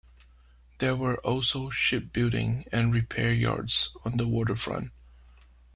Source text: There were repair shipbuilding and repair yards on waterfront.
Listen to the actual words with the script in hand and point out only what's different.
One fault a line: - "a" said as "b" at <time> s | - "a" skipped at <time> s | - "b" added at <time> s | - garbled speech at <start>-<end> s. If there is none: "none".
- "repair" said as "also" at 1.2 s
- "the" added at 4.1 s